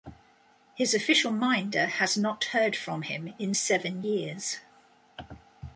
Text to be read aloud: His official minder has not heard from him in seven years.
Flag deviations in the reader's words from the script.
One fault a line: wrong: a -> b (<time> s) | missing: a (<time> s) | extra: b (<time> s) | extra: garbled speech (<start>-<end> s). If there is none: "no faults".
no faults